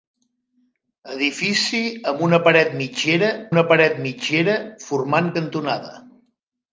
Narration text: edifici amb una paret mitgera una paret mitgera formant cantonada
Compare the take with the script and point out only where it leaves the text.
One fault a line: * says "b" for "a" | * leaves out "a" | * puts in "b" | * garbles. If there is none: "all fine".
all fine